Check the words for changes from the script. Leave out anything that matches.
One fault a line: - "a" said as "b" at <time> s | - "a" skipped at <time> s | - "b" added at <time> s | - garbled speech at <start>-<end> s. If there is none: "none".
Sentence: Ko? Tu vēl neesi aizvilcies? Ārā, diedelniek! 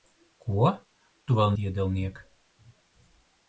- "neesi aizvilcies Ārā" skipped at 1.5 s